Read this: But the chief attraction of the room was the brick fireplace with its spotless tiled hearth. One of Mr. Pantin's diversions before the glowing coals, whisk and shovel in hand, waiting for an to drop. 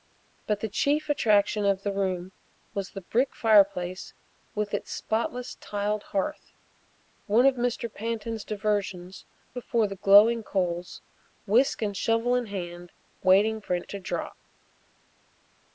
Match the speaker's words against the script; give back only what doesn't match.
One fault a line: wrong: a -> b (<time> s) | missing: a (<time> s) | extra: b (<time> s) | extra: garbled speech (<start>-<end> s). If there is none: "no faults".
no faults